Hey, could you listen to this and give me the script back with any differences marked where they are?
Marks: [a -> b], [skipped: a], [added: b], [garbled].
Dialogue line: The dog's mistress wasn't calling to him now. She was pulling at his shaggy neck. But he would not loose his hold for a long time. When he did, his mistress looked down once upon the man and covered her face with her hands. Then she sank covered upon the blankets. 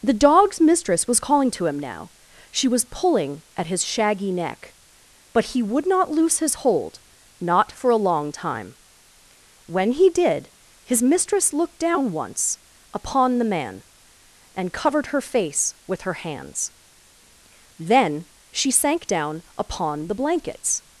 The dog's mistress [wasn't -> was] calling to him now. She was pulling at his shaggy neck. But he would not loose his hold [added: not] for a long time. When he did, his mistress looked down once upon the man and covered her face with her hands. Then she sank [covered -> down] upon the blankets.